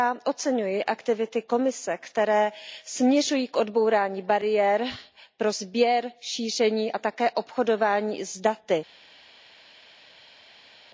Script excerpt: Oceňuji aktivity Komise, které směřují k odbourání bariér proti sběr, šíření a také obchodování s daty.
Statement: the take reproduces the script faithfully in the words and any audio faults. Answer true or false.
false